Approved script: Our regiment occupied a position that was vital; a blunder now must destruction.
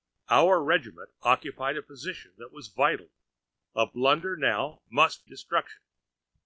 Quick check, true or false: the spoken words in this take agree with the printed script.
true